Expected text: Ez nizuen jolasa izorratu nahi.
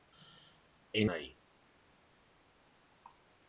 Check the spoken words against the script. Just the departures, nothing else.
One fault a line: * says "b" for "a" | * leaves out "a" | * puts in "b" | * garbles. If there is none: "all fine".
* leaves out "nizuen jolasa izorratu"